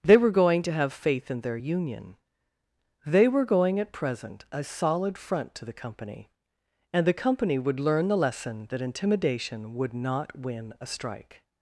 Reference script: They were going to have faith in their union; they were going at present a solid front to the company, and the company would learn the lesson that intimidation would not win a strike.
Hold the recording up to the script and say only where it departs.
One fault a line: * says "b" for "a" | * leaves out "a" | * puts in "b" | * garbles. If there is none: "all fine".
all fine